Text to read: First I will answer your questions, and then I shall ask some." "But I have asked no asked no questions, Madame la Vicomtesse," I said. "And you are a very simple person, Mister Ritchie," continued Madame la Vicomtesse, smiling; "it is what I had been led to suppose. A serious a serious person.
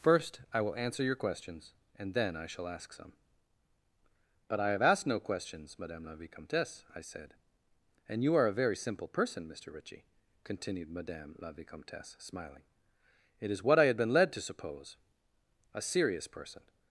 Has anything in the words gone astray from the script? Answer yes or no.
yes